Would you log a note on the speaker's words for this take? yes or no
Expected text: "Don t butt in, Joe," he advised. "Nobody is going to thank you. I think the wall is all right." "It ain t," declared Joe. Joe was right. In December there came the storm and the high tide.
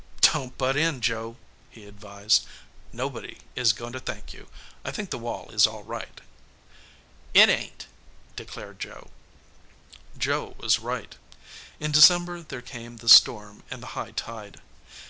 no